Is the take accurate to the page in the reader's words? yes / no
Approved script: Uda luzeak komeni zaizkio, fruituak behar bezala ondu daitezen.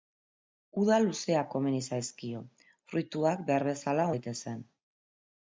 no